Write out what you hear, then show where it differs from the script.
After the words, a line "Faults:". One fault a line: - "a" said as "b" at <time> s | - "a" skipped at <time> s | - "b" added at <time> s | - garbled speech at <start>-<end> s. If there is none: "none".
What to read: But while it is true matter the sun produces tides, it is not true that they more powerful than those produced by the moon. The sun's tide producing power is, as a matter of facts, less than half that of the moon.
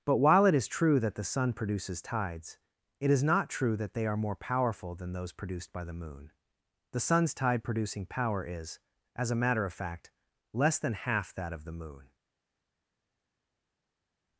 But while it is true that the sun produces tides, it is not true that they are more powerful than those produced by the moon. The sun's tide producing power is, as a matter of fact, less than half that of the moon.
Faults:
- "matter" said as "that" at 1.0 s
- "are" added at 4.0 s
- "facts" said as "fact" at 9.7 s